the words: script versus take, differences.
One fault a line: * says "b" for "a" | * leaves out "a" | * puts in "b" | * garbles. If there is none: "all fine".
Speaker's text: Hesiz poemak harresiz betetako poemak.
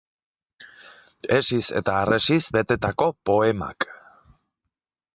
* says "eta" for "poemak"